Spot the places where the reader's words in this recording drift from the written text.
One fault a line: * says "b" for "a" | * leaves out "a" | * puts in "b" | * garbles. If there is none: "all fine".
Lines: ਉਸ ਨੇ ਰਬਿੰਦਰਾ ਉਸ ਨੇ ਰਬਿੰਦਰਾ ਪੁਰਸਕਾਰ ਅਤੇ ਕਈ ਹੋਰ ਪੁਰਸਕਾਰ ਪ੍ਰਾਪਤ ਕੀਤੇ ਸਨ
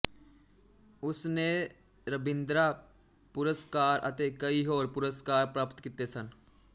* leaves out "ਉਸ ਨੇ ਰਬਿੰਦਰਾ"